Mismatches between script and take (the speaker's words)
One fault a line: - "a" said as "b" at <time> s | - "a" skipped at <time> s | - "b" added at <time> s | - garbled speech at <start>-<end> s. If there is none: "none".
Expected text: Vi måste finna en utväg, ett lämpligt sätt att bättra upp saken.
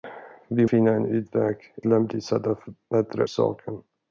- "måste" skipped at 0.7 s
- "ett" skipped at 1.6 s
- "upp" skipped at 3.2 s